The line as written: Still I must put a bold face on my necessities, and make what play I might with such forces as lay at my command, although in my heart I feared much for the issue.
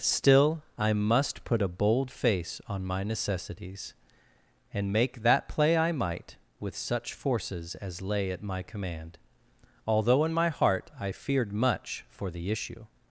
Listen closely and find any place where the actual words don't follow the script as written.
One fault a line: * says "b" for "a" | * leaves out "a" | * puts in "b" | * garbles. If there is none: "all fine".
* says "that" for "what"